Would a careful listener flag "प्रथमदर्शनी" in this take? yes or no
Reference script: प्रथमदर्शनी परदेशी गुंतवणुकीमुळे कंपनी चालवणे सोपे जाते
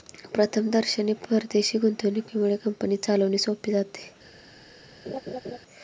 no